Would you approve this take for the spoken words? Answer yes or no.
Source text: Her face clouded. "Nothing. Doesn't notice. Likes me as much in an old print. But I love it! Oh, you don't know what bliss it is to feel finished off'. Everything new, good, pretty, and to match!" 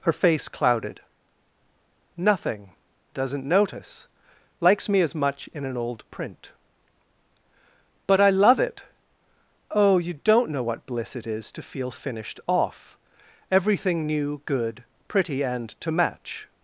yes